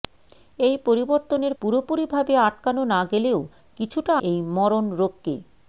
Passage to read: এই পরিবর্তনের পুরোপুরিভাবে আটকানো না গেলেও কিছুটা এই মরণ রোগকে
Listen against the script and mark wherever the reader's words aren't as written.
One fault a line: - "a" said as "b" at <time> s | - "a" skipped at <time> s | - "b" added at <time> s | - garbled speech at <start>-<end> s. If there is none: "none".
none